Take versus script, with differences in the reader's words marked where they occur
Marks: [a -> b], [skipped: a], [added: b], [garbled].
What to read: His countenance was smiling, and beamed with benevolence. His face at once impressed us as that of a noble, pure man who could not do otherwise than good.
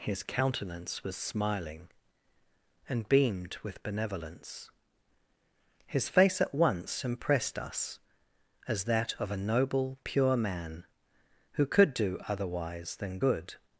His countenance was smiling, and beamed with benevolence. His face at once impressed us as that of a noble, pure man who could [skipped: not] do otherwise than good.